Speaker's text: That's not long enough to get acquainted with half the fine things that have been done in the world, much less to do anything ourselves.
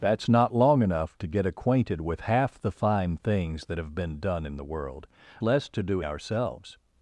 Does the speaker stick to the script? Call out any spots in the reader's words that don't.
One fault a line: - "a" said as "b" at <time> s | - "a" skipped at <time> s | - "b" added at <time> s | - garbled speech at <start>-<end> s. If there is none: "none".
- "much" skipped at 5.0 s
- "anything" skipped at 6.0 s